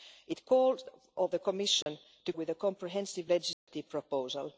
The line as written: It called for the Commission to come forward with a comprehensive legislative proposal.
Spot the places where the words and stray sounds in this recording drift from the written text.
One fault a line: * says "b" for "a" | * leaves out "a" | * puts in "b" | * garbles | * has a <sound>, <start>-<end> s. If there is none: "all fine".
* leaves out "for"
* has a dropout, 1.8-1.9 s
* leaves out "come forward"
* has a dropout, 3.5-3.7 s